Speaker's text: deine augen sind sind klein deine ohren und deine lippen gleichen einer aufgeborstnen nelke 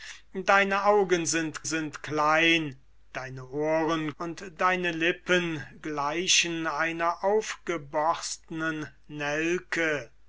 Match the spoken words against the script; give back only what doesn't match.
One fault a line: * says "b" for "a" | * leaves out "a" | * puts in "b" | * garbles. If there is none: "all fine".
all fine